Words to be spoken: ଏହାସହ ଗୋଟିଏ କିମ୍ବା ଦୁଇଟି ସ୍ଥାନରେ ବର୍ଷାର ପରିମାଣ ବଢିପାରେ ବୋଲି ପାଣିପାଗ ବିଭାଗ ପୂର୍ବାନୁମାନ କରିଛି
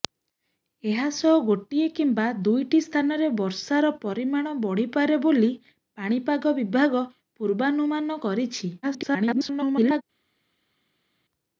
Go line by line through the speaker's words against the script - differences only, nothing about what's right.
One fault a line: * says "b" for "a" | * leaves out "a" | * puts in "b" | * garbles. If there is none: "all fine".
* garbles